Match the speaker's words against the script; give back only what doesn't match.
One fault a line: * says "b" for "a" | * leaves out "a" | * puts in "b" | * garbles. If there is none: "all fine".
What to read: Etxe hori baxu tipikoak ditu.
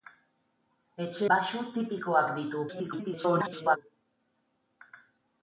* leaves out "hori"
* garbles